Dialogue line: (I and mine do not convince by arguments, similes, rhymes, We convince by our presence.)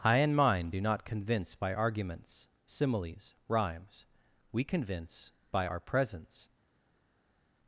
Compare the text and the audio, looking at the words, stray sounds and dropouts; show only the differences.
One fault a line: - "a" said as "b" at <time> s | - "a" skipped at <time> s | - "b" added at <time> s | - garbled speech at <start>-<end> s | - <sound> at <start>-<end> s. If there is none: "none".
none